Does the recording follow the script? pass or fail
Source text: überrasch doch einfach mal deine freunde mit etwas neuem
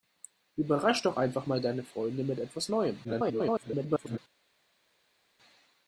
fail